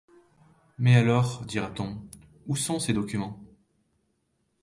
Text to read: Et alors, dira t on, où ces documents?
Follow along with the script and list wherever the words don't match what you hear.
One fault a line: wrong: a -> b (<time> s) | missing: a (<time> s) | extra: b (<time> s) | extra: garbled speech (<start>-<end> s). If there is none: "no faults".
wrong: Et -> Mais (0.8 s)
extra: sont (2.6 s)